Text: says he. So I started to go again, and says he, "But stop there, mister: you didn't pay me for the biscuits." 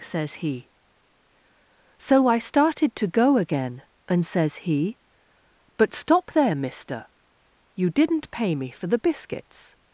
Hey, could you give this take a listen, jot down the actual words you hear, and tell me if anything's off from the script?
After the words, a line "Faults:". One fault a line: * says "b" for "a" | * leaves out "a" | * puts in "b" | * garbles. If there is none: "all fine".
says he. So I started to go again, and says he, "But stop there, mister: you didn't pay me for the biscuits."
Faults:
all fine